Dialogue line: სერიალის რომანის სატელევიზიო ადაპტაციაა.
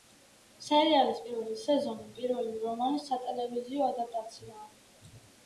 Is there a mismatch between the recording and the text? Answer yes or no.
yes